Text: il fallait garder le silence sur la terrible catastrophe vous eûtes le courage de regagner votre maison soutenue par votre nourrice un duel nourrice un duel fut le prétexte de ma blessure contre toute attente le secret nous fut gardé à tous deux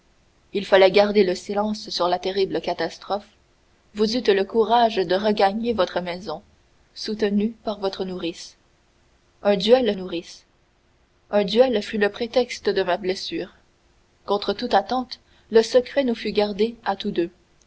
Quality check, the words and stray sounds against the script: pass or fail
pass